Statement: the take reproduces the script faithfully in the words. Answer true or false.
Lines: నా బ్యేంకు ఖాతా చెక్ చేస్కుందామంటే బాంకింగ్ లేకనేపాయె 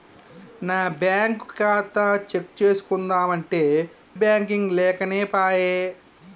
true